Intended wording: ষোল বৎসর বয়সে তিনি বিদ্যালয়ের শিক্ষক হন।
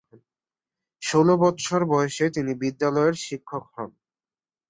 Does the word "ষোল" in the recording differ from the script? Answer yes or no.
no